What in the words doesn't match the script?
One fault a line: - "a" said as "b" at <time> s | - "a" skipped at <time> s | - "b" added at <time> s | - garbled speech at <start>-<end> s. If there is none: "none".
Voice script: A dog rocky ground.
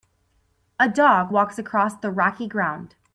- "walks across the" added at 1.3 s